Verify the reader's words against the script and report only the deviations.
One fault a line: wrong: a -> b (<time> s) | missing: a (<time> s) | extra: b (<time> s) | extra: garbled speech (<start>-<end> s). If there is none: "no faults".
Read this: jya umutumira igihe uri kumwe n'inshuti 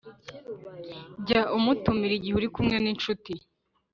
no faults